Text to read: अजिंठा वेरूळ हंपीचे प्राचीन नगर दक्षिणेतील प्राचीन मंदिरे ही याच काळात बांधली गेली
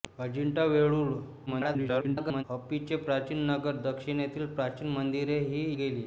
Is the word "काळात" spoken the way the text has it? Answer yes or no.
no